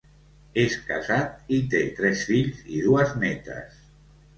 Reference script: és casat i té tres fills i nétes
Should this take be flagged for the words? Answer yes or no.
yes